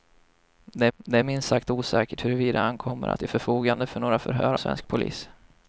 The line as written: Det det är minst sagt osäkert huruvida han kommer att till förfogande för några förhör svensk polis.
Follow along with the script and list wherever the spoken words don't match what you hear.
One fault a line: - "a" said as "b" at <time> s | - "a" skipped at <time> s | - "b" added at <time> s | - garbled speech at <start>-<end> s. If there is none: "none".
none